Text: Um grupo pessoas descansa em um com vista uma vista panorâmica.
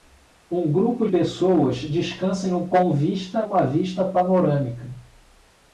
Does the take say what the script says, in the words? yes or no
yes